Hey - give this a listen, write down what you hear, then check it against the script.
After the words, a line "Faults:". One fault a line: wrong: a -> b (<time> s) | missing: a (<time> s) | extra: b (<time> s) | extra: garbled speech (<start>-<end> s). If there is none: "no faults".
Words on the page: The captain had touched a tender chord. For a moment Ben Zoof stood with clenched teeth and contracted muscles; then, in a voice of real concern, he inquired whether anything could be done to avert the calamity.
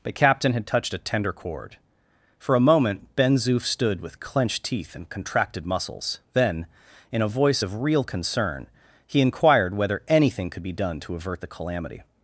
But captain had touched a tender chord. For a moment Ben Zoof stood with clenched teeth and contracted muscles; then, in a voice of real concern, he inquired whether anything could be done to avert the calamity.
Faults:
wrong: The -> But (0.0 s)